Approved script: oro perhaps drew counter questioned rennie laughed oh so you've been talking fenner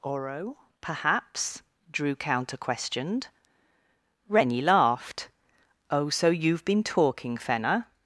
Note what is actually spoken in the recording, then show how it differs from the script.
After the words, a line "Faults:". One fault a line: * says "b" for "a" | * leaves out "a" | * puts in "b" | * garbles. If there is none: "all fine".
oro perhaps drew counter questioned rennie laughed oh so you've been talking fenner
Faults:
all fine